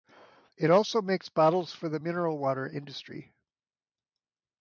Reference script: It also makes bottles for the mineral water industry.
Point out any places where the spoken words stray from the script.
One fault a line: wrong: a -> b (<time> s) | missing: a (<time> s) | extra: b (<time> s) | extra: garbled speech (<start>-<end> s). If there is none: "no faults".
no faults